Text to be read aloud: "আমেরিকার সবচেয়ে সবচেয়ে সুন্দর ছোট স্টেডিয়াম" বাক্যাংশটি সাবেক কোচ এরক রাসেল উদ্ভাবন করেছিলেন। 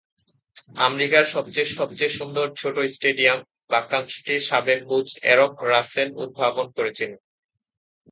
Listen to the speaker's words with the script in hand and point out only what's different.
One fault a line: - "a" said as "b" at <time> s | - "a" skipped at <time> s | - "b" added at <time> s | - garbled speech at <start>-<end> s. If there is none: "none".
none